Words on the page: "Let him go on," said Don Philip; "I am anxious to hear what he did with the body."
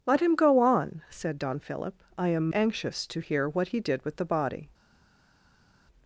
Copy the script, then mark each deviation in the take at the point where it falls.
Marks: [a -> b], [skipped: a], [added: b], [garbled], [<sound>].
"Let him go on," said Don Philip; "I am anxious to hear what he did with the body."